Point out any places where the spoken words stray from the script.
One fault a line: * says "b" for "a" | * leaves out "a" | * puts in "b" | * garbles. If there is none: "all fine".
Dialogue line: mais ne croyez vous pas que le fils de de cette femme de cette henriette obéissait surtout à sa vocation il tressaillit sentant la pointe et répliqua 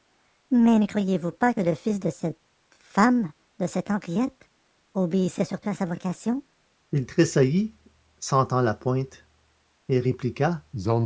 * leaves out "de"